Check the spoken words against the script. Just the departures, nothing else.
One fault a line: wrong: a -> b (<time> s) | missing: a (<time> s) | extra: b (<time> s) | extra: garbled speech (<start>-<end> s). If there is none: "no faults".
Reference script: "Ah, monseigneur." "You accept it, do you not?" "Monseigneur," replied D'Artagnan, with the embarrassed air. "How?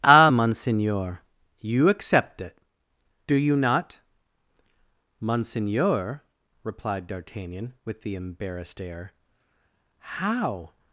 no faults